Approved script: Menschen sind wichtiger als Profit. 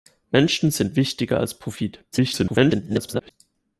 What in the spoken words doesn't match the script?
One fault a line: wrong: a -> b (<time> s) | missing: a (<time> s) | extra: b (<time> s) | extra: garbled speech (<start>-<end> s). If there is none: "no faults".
extra: garbled speech (2.1-3.3 s)